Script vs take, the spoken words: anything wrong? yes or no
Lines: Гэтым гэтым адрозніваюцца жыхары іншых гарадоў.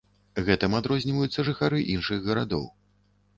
yes